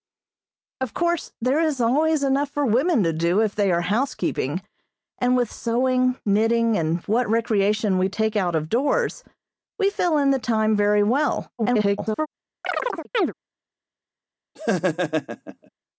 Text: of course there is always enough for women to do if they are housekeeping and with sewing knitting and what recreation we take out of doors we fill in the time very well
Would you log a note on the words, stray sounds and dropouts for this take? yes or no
yes